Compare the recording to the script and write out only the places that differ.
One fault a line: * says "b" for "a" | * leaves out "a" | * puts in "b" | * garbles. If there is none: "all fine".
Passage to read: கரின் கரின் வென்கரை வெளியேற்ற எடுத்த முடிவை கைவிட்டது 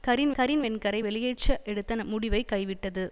all fine